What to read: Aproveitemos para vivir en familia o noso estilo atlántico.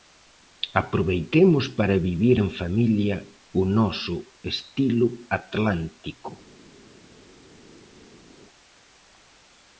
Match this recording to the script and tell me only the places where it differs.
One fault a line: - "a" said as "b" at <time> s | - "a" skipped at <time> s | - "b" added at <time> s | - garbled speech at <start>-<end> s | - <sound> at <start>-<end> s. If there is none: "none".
none